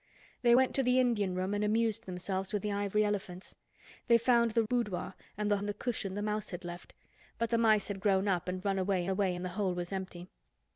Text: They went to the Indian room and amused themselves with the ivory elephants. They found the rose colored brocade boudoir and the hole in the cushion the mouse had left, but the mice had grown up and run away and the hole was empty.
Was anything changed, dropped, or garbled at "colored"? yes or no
yes